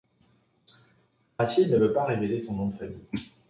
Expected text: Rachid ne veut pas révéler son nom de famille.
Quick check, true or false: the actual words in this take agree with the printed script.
true